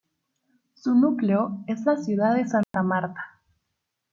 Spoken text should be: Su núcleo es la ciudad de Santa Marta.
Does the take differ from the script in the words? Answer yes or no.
no